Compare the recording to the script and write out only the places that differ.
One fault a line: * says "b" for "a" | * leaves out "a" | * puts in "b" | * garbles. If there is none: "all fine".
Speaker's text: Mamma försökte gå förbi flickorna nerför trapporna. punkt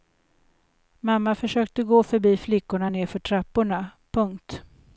all fine